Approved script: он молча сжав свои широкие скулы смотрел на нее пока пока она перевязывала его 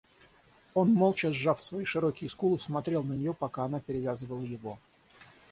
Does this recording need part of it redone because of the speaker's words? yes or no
yes